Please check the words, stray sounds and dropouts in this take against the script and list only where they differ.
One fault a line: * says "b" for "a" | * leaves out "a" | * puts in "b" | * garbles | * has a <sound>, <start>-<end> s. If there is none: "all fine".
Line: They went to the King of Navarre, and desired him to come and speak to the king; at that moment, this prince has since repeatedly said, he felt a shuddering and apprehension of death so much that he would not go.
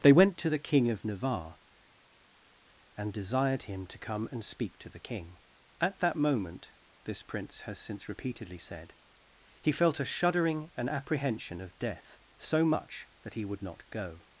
all fine